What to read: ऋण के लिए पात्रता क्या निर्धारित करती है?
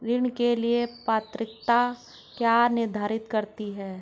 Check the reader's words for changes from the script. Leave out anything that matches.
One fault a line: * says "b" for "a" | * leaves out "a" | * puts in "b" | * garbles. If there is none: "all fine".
all fine